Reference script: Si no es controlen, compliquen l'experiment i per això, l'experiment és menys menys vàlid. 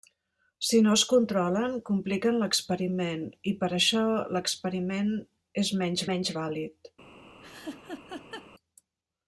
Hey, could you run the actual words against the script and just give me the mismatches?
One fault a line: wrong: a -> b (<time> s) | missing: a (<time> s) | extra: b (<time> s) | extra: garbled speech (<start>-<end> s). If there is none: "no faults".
no faults